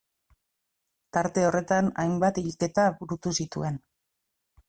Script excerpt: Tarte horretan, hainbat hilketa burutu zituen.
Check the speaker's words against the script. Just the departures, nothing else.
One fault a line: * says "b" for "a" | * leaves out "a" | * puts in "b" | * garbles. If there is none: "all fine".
all fine